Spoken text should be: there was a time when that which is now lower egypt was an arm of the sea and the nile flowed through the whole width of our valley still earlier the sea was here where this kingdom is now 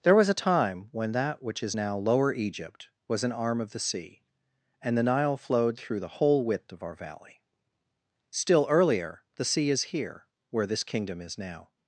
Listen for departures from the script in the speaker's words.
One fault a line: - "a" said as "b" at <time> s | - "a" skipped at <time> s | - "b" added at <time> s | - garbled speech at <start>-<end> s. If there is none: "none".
- "was" said as "is" at 9.7 s